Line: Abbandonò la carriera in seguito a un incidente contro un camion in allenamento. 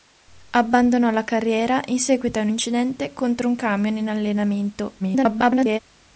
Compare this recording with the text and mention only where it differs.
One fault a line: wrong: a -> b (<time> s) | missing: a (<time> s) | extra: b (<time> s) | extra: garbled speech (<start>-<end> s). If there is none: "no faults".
extra: garbled speech (5.0-5.8 s)